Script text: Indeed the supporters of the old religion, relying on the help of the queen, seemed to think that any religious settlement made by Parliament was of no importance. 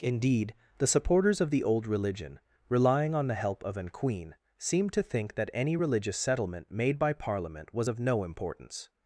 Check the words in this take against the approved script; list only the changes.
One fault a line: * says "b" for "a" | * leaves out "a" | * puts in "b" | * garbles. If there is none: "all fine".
* says "an" for "the"